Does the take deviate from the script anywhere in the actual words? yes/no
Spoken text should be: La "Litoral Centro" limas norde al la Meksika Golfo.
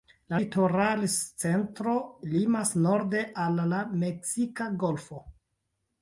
no